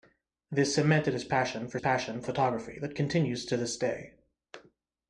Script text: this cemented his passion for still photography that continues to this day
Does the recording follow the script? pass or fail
fail